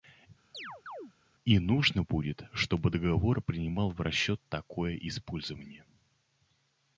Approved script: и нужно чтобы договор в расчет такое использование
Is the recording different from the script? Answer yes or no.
yes